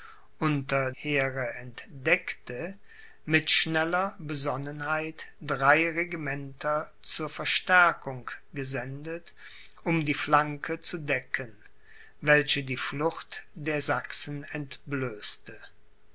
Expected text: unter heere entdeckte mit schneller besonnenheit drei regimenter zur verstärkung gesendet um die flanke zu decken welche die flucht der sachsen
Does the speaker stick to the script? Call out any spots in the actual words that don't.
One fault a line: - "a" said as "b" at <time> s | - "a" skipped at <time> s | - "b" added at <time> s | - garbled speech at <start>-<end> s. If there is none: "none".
none